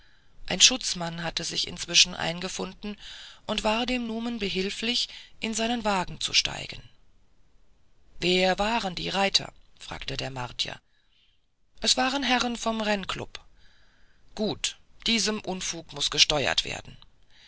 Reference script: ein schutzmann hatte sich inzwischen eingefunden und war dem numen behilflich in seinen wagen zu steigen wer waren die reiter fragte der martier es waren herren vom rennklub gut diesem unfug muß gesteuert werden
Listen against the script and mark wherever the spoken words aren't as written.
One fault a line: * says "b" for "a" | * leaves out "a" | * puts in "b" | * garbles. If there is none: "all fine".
all fine